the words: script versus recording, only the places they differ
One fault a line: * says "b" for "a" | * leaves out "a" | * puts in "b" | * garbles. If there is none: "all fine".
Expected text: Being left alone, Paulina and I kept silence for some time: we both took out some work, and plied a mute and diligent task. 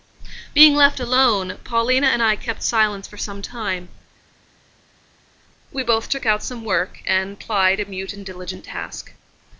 all fine